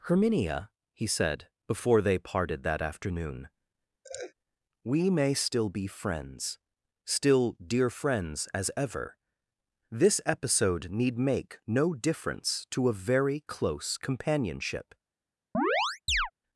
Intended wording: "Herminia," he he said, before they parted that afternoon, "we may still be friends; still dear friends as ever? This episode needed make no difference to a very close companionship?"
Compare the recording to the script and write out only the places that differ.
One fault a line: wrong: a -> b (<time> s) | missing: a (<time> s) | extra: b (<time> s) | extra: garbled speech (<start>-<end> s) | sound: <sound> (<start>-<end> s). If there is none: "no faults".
missing: he (1.1 s)
sound: laugh (4.0-4.3 s)
wrong: needed -> need (10.9 s)
sound: chirp (15.5-16.3 s)